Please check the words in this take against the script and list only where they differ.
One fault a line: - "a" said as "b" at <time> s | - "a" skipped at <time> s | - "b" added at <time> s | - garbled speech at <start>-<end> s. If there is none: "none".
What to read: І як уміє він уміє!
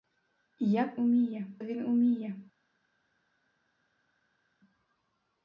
none